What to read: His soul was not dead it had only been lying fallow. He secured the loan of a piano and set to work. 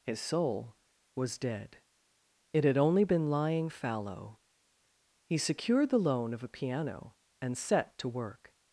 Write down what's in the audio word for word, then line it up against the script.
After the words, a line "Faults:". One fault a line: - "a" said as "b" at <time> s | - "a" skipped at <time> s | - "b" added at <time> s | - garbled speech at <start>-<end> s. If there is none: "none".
His soul was dead it had only been lying fallow. He secured the loan of a piano and set to work.
Faults:
- "not" skipped at 1.4 s